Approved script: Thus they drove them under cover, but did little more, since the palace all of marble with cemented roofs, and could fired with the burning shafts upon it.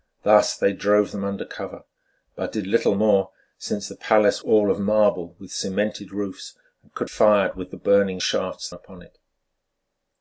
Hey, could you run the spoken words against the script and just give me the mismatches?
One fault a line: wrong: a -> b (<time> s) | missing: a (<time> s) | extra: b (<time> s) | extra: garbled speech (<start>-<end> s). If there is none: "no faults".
no faults